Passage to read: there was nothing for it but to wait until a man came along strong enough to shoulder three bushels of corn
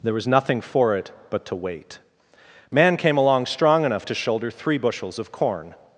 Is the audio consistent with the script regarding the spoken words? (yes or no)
no